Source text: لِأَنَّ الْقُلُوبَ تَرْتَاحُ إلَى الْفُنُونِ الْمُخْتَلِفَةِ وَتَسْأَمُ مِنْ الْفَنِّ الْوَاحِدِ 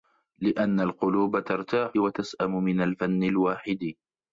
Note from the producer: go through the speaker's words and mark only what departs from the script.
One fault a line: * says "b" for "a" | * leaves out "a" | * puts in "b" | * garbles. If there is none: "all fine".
* leaves out "إلَى الْفُنُونِ الْمُخْتَلِفَةِ"